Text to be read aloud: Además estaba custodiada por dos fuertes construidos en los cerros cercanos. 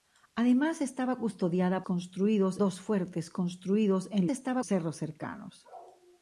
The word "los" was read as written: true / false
false